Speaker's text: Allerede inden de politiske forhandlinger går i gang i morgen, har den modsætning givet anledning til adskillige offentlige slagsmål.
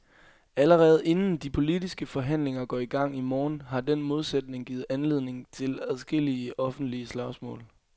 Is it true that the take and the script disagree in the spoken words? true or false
false